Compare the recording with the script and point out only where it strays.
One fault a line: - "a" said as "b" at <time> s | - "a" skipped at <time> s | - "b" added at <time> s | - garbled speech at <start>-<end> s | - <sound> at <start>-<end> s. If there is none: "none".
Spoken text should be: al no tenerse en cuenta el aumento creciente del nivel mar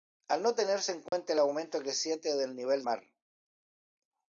- dropout at 1.1-1.1 s